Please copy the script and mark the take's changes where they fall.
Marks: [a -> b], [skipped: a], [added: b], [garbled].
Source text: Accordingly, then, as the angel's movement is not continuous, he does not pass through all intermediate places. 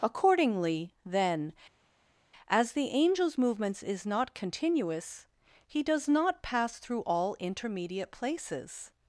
Accordingly, then, as the angel's [movement -> movements] is not continuous, he does not pass through all intermediate places.